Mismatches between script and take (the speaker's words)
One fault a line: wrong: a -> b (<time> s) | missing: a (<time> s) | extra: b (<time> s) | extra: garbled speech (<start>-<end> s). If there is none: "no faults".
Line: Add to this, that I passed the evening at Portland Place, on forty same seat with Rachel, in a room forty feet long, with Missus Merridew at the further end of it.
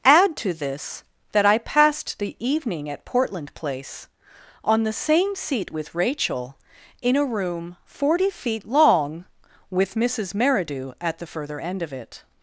wrong: forty -> the (4.8 s)